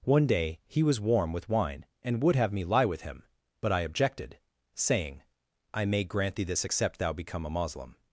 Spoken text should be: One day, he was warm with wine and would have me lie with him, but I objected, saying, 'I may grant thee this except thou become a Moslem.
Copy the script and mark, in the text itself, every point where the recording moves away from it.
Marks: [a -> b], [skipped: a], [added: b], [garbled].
One day, he was warm with wine and would have me lie with him, but I objected, saying, 'I may grant thee this except thou become a Moslem.